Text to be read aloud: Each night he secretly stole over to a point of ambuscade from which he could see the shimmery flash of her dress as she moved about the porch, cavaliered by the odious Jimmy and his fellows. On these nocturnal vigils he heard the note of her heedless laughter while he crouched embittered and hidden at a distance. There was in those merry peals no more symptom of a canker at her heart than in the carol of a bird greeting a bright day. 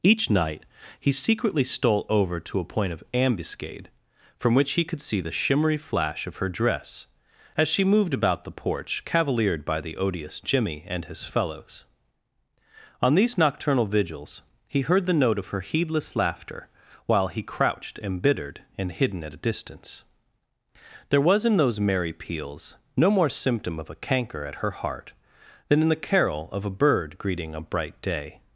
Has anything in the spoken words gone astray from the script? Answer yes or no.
no